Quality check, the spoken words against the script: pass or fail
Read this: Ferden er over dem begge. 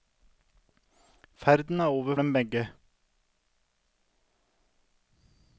pass